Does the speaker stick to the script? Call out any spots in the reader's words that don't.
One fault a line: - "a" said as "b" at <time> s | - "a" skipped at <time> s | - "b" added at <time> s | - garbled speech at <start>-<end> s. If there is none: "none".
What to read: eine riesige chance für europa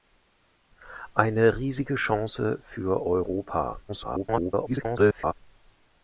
- garbled speech at 3.9-5.3 s